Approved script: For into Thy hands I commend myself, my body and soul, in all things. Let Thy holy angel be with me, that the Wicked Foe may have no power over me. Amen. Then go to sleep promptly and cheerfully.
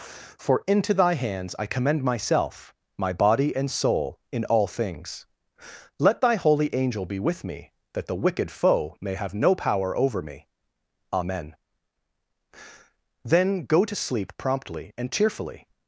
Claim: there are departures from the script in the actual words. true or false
false